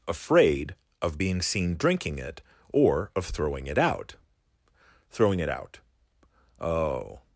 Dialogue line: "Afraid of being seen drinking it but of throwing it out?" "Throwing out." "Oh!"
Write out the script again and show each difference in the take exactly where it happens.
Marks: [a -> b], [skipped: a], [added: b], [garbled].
"Afraid of being seen drinking it [but -> or] of throwing it out?" "Throwing [added: it] out." "Oh!"